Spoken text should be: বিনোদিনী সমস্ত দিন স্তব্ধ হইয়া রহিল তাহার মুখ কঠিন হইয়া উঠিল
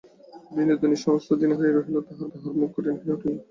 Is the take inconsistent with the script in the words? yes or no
yes